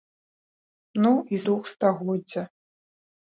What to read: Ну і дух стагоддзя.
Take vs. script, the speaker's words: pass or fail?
pass